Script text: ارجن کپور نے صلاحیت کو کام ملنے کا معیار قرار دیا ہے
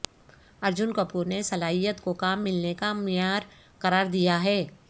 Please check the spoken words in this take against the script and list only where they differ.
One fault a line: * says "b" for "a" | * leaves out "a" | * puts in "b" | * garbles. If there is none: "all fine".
all fine